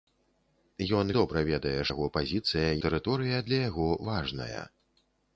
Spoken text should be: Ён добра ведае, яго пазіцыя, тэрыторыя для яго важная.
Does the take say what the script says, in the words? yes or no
yes